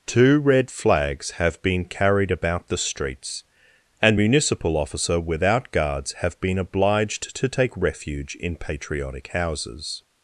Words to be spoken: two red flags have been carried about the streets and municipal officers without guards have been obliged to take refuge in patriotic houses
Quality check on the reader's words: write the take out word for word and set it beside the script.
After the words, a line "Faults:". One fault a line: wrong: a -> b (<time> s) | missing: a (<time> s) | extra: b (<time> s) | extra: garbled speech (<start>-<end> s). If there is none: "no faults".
two red flags have been carried about the streets and municipal officer without guards have been obliged to take refuge in patriotic houses
Faults:
wrong: officers -> officer (4.8 s)